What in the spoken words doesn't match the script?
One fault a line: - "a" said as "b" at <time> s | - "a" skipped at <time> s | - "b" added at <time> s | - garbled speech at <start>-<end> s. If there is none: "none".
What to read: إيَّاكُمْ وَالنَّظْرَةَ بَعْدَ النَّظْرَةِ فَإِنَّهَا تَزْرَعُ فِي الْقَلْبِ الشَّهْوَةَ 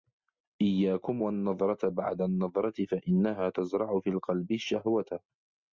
none